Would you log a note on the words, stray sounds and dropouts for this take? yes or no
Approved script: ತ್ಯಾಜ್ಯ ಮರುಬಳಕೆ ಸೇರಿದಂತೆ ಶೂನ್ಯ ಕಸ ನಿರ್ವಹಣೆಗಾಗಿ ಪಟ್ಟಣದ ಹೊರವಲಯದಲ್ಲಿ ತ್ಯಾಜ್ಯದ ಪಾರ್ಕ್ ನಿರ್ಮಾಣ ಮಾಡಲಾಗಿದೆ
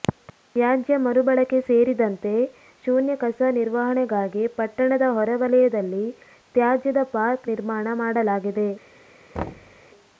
yes